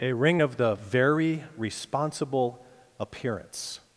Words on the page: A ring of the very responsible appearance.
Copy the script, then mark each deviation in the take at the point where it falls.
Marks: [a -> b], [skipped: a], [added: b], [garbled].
A ring of the very responsible appearance.